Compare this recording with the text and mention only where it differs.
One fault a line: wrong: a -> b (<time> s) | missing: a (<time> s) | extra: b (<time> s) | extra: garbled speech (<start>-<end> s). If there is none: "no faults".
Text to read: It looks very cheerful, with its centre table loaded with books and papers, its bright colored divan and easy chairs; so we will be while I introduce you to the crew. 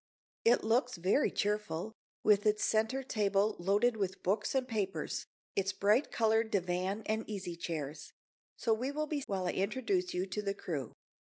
no faults